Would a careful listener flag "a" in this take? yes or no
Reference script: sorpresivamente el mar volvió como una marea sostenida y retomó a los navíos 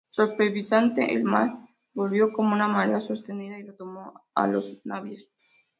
no